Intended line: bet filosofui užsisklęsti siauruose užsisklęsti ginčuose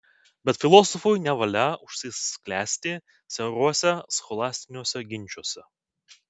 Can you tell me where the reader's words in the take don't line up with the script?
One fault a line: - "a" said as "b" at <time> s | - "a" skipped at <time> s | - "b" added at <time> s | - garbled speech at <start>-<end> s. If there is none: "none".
- "nevalia" added at 1.2 s
- "užsisklęsti" said as "scholastiniuose" at 4.2 s